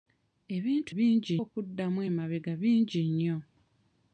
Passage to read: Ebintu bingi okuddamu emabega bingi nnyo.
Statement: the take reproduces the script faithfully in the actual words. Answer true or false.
true